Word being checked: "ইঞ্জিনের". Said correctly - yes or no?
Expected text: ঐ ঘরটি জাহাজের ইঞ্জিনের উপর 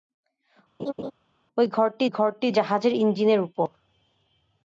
yes